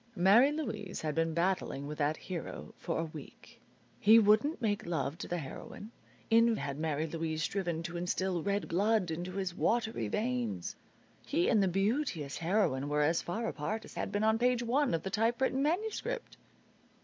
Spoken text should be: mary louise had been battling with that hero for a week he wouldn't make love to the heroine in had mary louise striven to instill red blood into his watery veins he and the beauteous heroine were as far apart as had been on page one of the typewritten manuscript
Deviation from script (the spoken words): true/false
false